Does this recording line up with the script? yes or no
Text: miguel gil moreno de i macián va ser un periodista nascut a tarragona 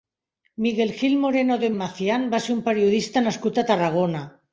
yes